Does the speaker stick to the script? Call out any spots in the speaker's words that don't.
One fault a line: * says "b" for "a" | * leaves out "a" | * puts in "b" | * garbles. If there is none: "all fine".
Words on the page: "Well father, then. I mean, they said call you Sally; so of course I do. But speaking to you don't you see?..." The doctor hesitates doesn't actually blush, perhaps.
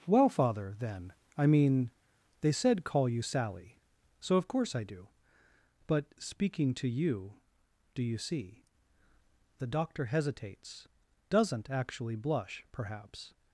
* says "do" for "don't"